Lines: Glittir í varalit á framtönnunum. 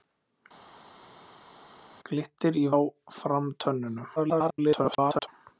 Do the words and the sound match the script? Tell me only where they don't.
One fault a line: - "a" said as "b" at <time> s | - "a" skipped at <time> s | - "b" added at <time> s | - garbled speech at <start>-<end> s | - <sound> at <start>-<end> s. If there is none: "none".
- "varalit" skipped at 2.6 s
- garbled speech at 4.2-5.3 s